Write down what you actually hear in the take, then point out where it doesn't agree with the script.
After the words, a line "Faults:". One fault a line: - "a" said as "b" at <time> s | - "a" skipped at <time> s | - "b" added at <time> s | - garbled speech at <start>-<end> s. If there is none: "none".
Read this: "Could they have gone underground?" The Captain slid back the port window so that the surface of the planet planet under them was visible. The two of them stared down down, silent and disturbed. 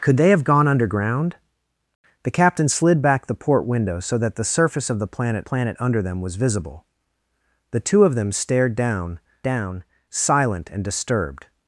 "Could they have gone underground?" The Captain slid back the port window so that the surface of the planet planet under them was visible. The two of them stared down down, silent and disturbed.
Faults:
none